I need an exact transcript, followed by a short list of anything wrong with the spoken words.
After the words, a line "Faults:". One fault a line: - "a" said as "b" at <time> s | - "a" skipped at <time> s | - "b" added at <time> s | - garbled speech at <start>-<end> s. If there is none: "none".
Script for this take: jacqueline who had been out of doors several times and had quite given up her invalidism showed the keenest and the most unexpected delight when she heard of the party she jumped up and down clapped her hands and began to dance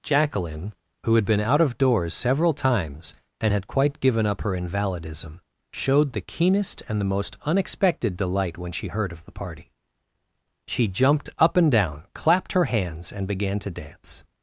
jacqueline who had been out of doors several times and had quite given up her invalidism showed the keenest and the most unexpected delight when she heard of the party she jumped up and down clapped her hands and began to dance
Faults:
none